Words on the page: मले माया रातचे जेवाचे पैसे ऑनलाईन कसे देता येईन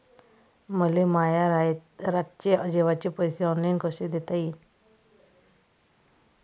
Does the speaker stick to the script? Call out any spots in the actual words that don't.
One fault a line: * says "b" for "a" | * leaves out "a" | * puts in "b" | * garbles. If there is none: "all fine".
all fine